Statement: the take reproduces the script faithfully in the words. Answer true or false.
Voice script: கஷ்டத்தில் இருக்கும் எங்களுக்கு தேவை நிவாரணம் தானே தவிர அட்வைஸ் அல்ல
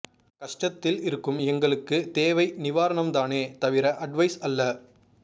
true